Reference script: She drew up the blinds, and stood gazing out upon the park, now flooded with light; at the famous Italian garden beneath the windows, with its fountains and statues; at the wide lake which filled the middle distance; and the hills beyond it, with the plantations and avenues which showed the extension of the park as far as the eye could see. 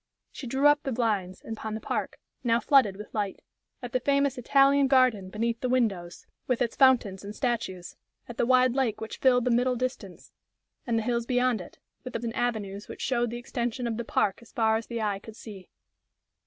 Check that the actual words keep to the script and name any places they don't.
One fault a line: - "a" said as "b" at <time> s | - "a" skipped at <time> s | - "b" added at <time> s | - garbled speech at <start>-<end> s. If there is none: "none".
- "stood gazing out" skipped at 1.6 s
- "plantations" skipped at 12.2 s